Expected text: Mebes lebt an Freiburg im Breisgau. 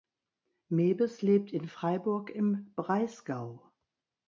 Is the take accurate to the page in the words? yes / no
no